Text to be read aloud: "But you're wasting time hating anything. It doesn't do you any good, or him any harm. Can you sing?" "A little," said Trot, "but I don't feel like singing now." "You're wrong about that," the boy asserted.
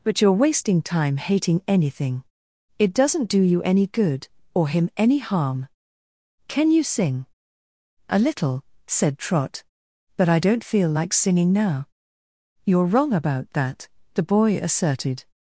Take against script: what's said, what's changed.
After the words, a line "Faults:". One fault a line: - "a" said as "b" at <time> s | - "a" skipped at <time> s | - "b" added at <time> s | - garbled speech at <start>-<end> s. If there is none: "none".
"But you're wasting time hating anything. It doesn't do you any good, or him any harm. Can you sing?" "A little," said Trot, "but I don't feel like singing now." "You're wrong about that," the boy asserted.
Faults:
none